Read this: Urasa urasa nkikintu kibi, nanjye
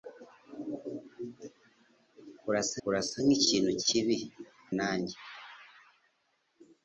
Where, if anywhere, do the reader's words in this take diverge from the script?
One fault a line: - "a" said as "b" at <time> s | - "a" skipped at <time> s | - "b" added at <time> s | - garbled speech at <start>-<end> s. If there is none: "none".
none